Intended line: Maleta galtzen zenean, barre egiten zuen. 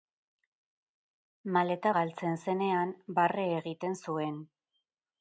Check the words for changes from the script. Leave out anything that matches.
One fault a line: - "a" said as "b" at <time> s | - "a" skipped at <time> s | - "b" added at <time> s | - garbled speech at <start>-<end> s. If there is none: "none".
none